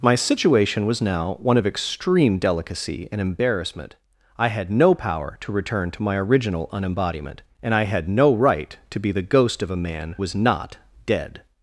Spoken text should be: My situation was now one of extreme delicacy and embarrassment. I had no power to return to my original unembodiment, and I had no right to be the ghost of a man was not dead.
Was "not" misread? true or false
false